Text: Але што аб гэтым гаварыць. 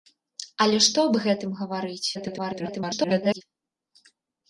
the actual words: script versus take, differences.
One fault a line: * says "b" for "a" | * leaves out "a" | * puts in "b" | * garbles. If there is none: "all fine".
* garbles